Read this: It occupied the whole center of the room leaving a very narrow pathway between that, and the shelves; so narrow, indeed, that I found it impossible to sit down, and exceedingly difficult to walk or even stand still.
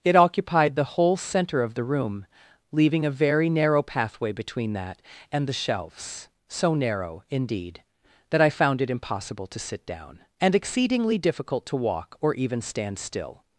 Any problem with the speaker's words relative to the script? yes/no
no